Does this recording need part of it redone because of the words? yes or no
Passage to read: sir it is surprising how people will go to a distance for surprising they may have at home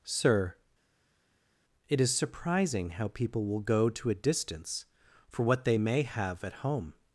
yes